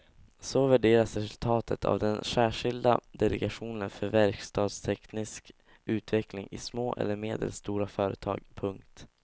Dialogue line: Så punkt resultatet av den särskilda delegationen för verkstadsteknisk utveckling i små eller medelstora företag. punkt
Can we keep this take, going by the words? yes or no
no